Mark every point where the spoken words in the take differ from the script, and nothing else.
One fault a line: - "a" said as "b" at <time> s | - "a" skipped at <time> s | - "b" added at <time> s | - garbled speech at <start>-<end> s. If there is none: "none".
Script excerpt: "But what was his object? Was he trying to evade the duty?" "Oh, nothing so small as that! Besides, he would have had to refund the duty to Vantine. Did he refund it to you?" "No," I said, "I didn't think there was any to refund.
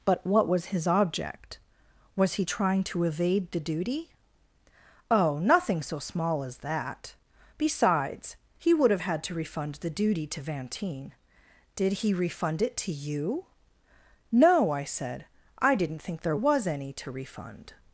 none